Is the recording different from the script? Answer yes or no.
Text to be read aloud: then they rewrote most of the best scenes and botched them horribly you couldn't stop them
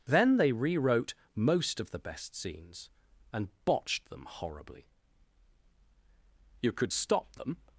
yes